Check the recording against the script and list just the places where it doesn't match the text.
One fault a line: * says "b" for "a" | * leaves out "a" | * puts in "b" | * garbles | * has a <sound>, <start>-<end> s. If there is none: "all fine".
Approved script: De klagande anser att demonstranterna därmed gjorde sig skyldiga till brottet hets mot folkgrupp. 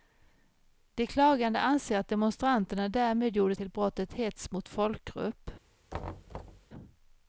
* leaves out "sig skyldiga"
* has a thud, 5.9-6.7 s